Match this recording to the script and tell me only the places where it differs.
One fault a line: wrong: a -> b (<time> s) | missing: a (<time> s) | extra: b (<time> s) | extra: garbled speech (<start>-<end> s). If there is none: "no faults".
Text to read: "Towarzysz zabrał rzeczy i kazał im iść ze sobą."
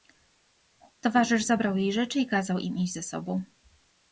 extra: jej (1.8 s)